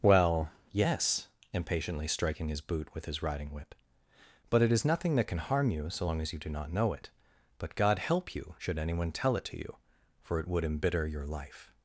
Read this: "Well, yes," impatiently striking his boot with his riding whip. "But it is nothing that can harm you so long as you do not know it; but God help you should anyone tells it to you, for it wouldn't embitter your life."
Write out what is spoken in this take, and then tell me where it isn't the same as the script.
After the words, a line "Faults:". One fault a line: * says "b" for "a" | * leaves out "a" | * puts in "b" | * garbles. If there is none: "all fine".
"Well, yes," impatiently striking his boot with his riding whip. "But it is nothing that can harm you so long as you do not know it; but God help you should anyone tell it to you, for it would embitter your life."
Faults:
* says "tell" for "tells"
* says "would" for "wouldn't"